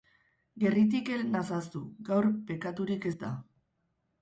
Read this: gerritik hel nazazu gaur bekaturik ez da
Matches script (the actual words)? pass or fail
pass